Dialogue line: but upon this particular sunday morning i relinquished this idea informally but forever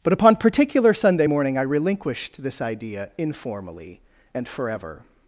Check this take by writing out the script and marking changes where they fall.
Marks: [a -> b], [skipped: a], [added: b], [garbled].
but upon [skipped: this] particular sunday morning i relinquished this idea informally [but -> and] forever